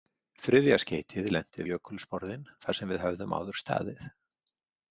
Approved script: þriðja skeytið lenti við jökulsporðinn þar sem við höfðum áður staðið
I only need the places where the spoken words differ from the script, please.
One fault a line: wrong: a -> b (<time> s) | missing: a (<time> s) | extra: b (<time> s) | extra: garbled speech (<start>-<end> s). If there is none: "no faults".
missing: við (1.7 s)